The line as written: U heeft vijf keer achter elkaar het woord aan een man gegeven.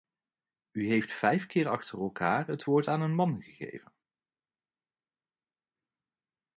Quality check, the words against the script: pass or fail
pass